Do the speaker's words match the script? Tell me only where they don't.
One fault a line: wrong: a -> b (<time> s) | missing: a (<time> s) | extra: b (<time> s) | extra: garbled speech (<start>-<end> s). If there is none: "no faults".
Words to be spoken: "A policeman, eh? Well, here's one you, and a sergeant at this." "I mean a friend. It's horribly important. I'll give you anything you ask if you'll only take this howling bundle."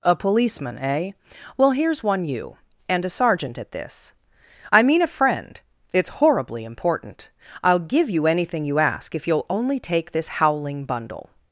no faults